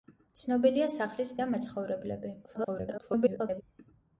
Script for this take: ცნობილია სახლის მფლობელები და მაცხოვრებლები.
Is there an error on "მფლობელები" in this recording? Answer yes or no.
yes